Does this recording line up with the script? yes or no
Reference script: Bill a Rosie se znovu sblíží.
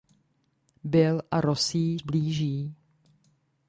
no